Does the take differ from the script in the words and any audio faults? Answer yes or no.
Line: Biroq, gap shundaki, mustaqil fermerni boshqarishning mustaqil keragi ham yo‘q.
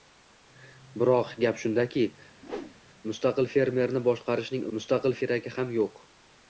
yes